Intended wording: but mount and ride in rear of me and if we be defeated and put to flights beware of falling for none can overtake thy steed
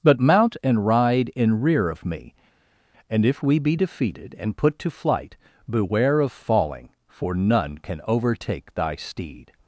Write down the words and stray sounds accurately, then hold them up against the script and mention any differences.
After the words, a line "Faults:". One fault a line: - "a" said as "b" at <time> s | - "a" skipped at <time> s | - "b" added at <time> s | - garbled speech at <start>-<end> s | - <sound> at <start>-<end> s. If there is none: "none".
but mount and ride in rear of me and if we be defeated and put to flight beware of falling for none can overtake thy steed
Faults:
- "flights" said as "flight" at 4.9 s